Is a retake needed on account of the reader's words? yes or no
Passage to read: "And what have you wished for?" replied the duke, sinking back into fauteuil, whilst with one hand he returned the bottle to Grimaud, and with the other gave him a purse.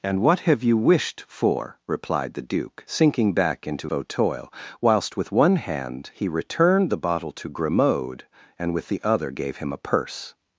no